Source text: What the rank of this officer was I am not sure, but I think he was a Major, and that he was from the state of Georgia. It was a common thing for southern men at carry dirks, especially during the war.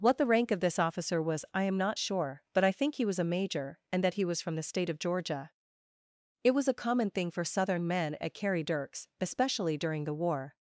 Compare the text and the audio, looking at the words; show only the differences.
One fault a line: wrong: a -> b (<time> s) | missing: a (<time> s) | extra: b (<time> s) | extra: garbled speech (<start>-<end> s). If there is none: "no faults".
no faults